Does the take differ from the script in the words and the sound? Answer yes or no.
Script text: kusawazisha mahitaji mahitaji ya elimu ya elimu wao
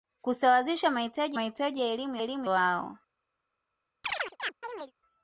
yes